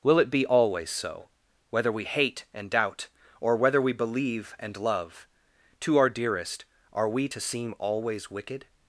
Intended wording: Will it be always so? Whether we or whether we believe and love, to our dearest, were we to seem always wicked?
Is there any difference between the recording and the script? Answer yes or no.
yes